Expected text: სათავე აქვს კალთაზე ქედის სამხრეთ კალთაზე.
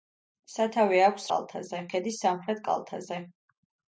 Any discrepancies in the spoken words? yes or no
no